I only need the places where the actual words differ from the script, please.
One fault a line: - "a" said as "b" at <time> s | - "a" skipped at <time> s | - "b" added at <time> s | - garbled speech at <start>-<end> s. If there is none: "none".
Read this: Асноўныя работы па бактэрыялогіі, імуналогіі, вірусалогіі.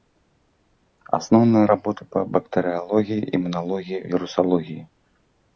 none